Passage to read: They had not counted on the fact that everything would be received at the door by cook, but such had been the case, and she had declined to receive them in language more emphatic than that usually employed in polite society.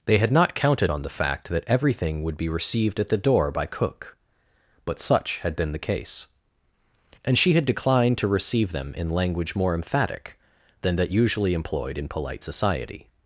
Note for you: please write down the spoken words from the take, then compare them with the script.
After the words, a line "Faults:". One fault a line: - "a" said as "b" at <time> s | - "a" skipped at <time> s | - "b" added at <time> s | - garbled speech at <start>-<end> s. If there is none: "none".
They had not counted on the fact that everything would be received at the door by cook, but such had been the case, and she had declined to receive them in language more emphatic than that usually employed in polite society.
Faults:
none